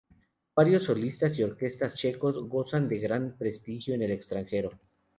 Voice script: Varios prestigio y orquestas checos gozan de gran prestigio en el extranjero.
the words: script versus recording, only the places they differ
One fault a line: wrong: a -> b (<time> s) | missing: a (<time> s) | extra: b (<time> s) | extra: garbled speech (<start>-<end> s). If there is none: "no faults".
wrong: prestigio -> solistas (0.8 s)